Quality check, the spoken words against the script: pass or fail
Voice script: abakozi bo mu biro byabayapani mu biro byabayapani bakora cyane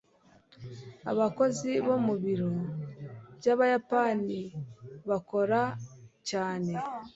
fail